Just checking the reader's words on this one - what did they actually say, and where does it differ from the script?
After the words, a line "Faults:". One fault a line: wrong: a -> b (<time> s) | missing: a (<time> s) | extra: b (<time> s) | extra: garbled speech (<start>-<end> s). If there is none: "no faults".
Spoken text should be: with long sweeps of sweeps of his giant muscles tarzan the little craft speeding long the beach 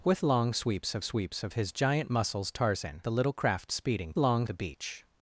with long sweeps of sweeps of his giant muscles tarzan the little craft speeding long the beach
Faults:
no faults